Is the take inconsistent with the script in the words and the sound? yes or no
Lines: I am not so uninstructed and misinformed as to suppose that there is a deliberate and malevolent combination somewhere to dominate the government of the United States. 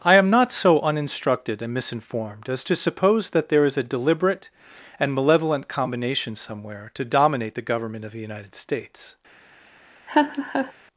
yes